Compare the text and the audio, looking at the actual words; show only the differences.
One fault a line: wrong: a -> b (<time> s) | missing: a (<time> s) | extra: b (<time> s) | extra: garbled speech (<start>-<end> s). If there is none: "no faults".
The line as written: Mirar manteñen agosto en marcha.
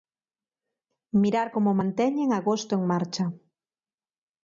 extra: como (1.5 s)